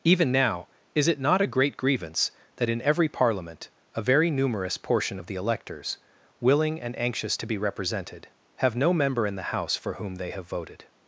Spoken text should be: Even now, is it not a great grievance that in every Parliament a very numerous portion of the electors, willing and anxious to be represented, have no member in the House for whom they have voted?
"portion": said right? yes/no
yes